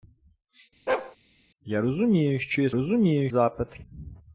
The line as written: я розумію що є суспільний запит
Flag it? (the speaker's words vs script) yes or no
yes